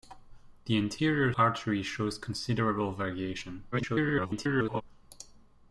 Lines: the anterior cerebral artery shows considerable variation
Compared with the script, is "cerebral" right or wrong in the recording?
wrong